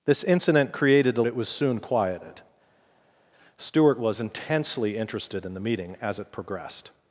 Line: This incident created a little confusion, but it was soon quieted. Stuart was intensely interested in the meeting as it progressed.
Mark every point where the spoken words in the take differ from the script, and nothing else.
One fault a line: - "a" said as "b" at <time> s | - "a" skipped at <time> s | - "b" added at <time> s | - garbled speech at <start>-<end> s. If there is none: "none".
- "little confusion but" skipped at 1.2 s